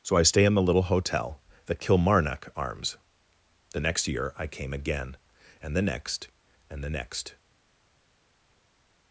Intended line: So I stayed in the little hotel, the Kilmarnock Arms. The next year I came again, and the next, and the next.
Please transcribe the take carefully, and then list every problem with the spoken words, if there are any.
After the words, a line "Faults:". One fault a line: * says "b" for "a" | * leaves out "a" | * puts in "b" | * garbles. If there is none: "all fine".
So I stay in the little hotel, the Kilmarnock Arms. The next year I came again, and the next, and the next.
Faults:
* says "stay" for "stayed"